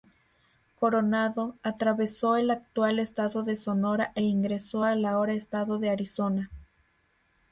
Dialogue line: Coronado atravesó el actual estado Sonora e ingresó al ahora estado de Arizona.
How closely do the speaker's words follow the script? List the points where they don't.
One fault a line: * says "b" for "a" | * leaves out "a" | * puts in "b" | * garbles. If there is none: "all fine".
* puts in "de"